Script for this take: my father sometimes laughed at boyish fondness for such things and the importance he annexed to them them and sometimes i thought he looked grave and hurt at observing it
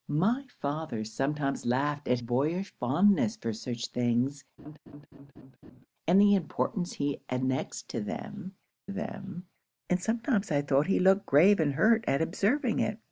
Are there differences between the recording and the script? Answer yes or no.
no